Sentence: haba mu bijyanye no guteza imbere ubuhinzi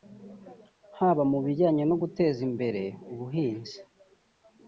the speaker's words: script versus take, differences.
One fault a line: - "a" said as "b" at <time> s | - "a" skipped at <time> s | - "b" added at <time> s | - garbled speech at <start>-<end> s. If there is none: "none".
none